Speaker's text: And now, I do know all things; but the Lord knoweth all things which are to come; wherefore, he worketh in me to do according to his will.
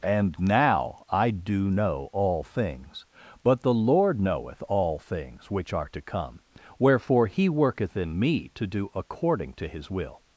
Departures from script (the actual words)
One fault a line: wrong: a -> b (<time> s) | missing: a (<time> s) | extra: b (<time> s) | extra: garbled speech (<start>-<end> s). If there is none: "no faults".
no faults